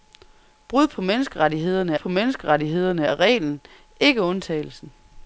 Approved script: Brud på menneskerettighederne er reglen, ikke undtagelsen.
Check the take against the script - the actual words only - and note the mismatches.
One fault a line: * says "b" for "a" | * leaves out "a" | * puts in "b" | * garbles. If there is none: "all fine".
* puts in "på menneskerettighederne"